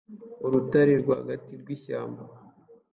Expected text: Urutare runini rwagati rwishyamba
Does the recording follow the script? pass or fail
fail